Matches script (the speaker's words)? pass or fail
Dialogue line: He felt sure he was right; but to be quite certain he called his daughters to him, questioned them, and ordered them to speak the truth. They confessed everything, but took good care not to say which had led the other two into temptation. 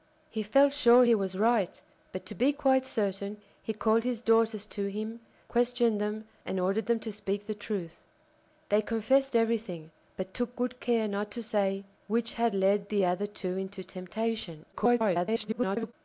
fail